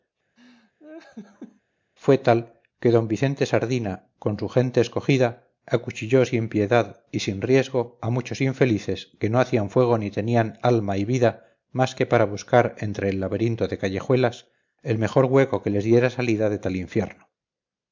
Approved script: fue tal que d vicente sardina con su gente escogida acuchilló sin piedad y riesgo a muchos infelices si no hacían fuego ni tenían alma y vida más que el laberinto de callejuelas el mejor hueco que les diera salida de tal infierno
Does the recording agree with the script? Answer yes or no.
no